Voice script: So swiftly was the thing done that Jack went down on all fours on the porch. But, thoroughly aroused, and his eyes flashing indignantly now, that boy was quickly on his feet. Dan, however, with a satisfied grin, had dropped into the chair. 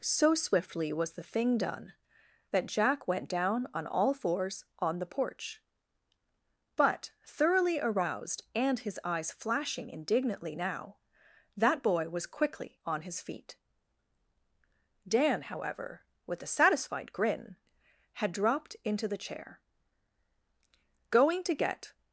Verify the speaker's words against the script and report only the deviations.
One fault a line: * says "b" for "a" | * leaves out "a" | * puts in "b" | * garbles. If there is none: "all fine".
* puts in "Going to get"